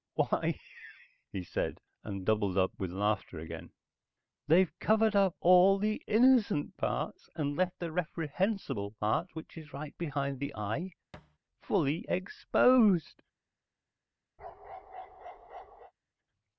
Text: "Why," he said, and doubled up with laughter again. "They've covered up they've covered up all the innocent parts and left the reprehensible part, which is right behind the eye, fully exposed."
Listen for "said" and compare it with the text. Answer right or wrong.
right